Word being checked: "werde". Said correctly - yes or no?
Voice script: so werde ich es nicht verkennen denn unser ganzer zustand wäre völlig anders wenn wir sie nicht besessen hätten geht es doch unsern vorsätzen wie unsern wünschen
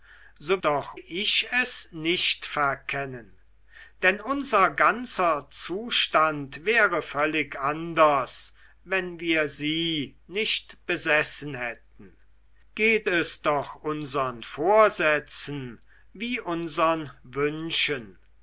no